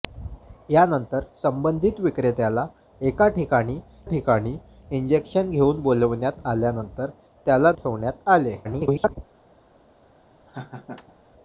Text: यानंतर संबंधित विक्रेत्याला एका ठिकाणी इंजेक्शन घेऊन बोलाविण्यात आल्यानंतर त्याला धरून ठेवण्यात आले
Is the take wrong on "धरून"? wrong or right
wrong